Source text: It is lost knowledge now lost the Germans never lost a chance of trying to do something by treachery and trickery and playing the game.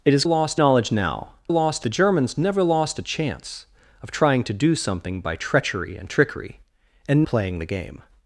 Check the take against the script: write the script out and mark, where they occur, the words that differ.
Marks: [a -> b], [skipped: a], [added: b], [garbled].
It is lost knowledge now lost the Germans never lost a chance of trying to do something by treachery and trickery and playing the game.